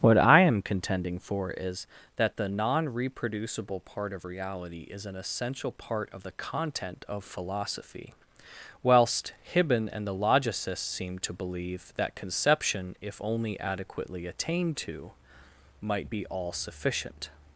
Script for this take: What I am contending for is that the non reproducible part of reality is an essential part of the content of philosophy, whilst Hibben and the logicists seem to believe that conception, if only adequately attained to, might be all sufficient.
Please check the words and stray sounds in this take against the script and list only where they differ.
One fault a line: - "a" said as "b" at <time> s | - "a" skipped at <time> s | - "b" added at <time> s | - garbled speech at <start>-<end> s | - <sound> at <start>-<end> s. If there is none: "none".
none